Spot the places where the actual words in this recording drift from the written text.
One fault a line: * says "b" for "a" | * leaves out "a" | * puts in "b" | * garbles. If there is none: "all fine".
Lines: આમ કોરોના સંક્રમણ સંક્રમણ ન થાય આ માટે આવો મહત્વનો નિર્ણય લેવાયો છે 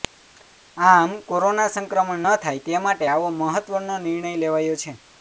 * leaves out "સંક્રમણ"
* says "તે" for "આ"